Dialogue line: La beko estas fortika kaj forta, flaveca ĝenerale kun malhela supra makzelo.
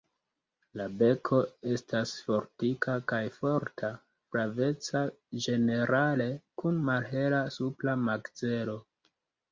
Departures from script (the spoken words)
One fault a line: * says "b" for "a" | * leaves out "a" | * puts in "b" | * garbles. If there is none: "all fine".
all fine